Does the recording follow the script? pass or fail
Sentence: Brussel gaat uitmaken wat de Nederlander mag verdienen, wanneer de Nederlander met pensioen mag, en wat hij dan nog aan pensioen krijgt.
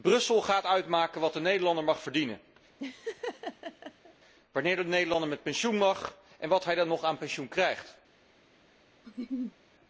pass